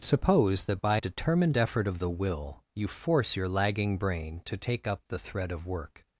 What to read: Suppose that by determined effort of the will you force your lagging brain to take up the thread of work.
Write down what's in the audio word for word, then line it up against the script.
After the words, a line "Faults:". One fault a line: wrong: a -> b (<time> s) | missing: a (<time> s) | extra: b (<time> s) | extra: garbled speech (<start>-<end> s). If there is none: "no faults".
Suppose that by determined effort of the will you force your lagging brain to take up the thread of work.
Faults:
no faults